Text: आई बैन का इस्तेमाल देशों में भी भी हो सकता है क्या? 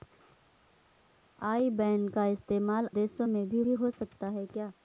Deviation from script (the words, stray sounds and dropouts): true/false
false